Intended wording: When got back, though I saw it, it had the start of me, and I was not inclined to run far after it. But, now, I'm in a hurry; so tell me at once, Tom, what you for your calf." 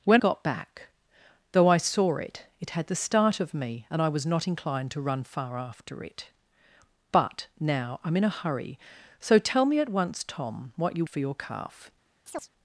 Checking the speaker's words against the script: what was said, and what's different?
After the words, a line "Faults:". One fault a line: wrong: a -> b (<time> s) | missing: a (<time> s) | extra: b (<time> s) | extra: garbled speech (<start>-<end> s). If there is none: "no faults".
When got back, though I saw it, it had the start of me, and I was not inclined to run far after it. But, now, I'm in a hurry; so tell me at once, Tom, what you for your calf."
Faults:
no faults